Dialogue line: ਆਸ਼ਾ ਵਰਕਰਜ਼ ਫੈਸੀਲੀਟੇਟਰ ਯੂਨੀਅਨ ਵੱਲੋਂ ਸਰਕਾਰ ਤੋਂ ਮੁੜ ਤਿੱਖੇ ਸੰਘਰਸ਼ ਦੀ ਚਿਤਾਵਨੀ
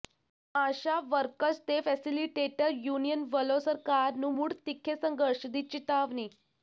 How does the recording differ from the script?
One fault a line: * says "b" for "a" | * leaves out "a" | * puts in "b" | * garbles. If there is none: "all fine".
* puts in "ਤੇ"
* says "ਨੂੰ" for "ਤੋਂ"